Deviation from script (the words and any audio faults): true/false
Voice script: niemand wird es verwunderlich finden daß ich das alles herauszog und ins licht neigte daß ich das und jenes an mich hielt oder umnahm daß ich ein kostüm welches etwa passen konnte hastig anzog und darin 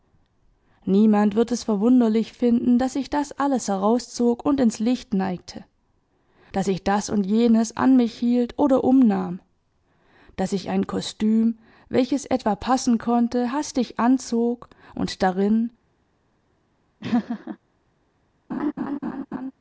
true